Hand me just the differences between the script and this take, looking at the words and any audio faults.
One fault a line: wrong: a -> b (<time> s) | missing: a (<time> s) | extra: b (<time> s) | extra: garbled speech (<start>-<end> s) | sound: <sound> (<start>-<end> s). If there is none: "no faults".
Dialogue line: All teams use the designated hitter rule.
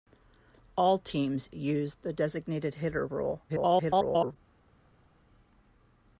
extra: garbled speech (3.5-4.4 s)